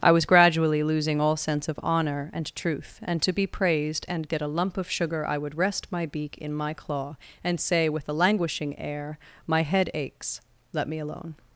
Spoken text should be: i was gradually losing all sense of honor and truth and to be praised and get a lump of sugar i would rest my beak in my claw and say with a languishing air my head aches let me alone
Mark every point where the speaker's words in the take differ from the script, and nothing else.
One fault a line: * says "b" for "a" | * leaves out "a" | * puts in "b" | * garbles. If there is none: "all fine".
all fine